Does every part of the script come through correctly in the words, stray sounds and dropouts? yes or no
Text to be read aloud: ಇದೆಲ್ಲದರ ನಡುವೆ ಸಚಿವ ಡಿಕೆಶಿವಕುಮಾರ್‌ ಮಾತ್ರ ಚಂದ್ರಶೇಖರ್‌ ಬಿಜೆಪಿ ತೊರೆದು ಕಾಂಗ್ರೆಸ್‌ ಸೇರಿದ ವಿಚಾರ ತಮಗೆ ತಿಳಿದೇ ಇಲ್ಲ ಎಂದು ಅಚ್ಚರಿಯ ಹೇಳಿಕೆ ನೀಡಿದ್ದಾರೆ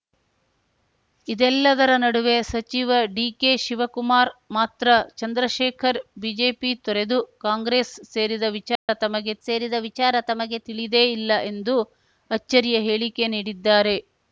no